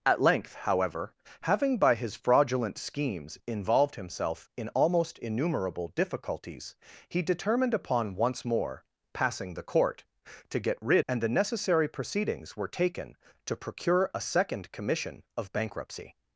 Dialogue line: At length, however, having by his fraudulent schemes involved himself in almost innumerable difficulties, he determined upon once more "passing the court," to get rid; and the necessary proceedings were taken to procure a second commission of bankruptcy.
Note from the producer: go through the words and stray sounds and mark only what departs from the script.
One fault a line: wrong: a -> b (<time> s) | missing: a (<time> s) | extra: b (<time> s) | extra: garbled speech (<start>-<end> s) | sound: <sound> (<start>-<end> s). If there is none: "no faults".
no faults